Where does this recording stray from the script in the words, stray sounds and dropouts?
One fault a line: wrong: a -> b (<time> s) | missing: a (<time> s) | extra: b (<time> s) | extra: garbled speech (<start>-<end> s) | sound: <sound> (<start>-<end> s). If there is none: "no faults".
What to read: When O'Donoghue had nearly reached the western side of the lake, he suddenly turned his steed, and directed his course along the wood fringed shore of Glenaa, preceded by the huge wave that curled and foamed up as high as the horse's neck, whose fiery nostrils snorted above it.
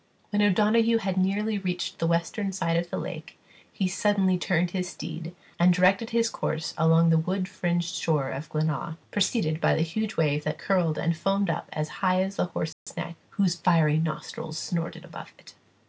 sound: dropout (12.7-12.9 s)